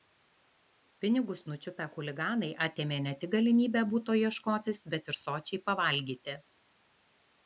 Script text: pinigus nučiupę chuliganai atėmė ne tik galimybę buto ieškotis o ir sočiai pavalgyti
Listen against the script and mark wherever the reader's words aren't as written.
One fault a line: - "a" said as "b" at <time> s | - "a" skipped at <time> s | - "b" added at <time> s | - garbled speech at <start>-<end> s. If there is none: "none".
- "o" said as "bet" at 5.0 s